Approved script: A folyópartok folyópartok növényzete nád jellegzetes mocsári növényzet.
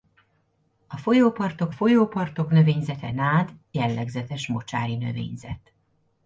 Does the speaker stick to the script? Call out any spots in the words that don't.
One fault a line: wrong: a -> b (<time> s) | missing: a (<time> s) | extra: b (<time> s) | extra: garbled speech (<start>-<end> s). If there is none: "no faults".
no faults